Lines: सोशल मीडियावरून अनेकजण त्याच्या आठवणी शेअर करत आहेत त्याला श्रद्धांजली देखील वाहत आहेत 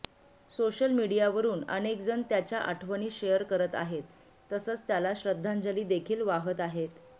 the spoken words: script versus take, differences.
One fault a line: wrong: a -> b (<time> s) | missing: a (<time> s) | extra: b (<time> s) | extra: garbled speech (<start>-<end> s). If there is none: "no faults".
extra: तसंच (4.5 s)